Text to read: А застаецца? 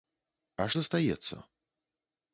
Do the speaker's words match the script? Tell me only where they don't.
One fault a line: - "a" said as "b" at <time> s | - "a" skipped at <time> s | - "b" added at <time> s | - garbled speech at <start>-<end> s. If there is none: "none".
none